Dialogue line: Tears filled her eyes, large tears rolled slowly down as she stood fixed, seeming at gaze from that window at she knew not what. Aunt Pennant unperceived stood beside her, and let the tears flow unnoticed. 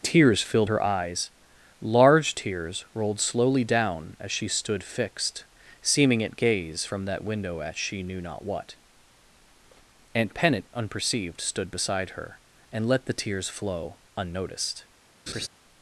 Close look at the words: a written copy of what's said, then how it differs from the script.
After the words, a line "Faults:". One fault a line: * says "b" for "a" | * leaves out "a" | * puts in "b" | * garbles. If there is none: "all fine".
Tears filled her eyes, large tears rolled slowly down as she stood fixed, seeming at gaze from that window at she knew not what. Aunt Pennant unperceived stood beside her, and let the tears flow unnoticed.
Faults:
all fine